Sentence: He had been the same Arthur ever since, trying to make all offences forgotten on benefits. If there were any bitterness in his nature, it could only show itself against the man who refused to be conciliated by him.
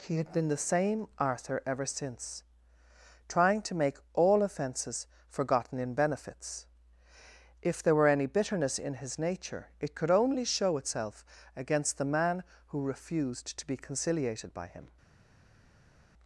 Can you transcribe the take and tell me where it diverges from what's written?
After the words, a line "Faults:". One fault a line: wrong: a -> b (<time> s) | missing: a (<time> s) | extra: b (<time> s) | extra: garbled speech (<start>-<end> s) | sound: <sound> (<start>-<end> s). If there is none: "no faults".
He had been the same Arthur ever since, trying to make all offences forgotten in benefits. If there were any bitterness in his nature, it could only show itself against the man who refused to be conciliated by him.
Faults:
wrong: on -> in (5.8 s)